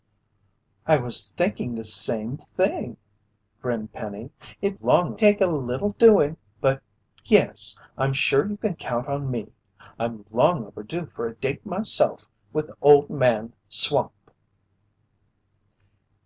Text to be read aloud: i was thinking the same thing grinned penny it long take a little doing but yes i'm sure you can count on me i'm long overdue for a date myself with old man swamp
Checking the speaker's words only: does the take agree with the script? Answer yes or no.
yes